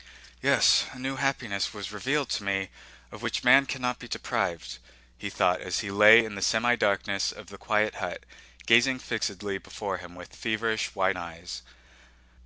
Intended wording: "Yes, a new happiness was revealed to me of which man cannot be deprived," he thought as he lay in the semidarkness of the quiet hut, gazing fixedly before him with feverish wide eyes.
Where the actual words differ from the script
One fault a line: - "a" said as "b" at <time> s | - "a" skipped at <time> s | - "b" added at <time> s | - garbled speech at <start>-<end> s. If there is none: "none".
none